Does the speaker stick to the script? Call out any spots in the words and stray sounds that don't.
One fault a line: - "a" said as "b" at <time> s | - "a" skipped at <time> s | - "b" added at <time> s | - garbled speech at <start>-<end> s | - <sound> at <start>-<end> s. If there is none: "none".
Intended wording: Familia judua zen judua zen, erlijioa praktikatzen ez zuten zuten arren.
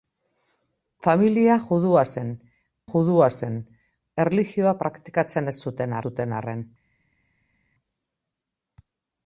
none